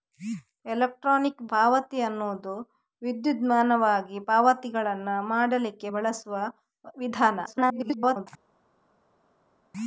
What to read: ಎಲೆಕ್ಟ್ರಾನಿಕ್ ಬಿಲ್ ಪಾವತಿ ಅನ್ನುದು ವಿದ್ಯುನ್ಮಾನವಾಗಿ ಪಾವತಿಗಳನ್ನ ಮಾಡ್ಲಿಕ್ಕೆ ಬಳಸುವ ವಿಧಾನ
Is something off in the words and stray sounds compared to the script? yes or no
yes